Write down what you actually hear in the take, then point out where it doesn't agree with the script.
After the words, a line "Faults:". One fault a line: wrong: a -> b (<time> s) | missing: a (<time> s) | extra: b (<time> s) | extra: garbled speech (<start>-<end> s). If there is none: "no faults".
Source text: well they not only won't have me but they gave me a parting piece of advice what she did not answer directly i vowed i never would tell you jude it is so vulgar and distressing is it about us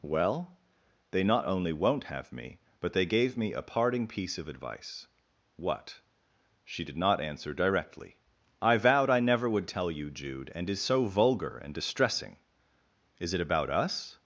well they not only won't have me but they gave me a parting piece of advice what she did not answer directly i vowed i never would tell you jude and is so vulgar and distressing is it about us
Faults:
wrong: it -> and (10.6 s)